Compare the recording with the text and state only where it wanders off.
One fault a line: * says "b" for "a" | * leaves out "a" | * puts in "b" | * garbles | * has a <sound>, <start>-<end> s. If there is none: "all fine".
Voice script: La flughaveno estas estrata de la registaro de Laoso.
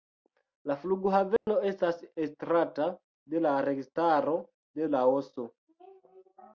* has a dropout, 1.4-1.5 s